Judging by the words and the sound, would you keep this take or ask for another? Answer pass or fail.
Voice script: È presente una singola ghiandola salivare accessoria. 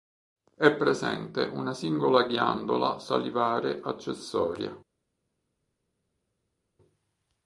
pass